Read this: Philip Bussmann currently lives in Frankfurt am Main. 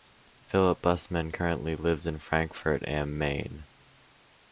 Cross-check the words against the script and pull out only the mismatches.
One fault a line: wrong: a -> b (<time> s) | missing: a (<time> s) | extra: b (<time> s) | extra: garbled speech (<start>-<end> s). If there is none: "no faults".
no faults